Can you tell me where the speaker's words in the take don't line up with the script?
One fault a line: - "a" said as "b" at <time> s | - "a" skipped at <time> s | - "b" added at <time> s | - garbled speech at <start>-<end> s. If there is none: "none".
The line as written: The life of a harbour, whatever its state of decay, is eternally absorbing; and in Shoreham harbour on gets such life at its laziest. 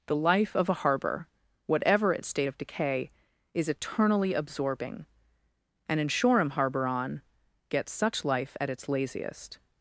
none